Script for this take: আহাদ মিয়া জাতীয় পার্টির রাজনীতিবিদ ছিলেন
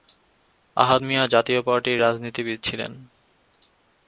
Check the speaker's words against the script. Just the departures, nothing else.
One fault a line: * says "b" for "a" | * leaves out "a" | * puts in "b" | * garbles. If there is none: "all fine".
all fine